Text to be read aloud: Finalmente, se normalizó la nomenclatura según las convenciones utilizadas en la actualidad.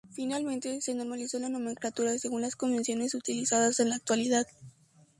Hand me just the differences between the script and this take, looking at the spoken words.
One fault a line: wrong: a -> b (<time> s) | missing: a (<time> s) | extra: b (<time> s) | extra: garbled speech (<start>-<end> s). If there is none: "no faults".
no faults